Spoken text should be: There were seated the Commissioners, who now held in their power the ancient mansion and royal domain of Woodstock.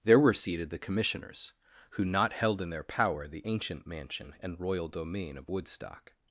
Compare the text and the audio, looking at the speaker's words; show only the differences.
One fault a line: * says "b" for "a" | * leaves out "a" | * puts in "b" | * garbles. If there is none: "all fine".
* says "not" for "now"